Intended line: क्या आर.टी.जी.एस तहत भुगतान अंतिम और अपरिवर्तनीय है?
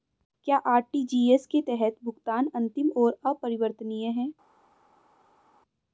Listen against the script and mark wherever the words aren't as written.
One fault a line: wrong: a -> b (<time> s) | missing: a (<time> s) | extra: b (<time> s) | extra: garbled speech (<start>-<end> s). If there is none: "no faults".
extra: के (1.4 s)